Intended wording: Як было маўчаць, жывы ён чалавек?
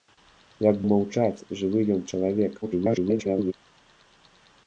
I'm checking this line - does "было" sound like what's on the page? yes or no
no